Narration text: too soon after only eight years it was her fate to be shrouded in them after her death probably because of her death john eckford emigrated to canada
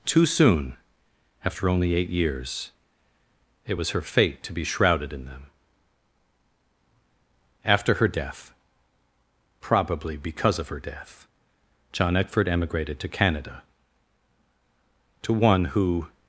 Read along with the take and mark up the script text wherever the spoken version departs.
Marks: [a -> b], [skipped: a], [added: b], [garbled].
too soon after only eight years it was her fate to be shrouded in them after her death probably because of her death john eckford emigrated to canada [added: to one who]